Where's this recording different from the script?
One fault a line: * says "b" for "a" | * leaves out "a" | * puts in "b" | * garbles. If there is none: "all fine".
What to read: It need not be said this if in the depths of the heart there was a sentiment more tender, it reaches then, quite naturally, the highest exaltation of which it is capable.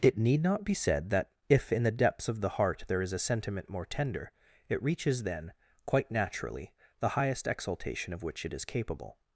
* says "that" for "this"
* says "is" for "was"